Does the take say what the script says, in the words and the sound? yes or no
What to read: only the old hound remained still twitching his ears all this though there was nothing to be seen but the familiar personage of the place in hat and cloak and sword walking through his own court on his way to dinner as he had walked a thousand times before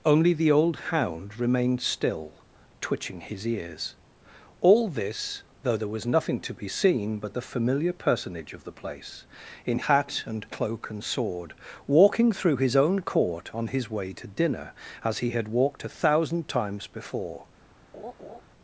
no